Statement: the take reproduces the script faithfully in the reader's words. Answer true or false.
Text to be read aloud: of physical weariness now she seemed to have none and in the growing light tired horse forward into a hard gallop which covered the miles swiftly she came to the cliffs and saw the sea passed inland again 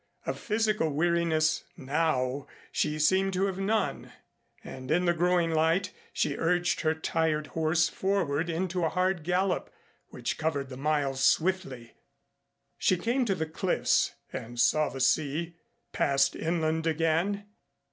false